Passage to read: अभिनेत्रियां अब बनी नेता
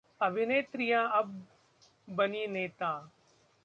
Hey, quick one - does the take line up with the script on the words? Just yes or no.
yes